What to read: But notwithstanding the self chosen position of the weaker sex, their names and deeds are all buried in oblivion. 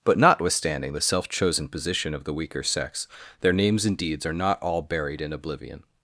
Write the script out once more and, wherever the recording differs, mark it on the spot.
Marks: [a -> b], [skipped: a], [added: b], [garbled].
But notwithstanding the self chosen position of the weaker sex, their names and deeds are [added: not] all buried in oblivion.